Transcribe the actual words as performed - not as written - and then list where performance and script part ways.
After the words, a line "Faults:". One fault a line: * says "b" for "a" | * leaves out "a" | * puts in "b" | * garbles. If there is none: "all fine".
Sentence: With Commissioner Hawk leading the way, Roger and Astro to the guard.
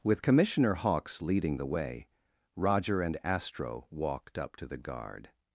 With Commissioner Hawks leading the way, Roger and Astro walked up to the guard.
Faults:
* says "Hawks" for "Hawk"
* puts in "walked up"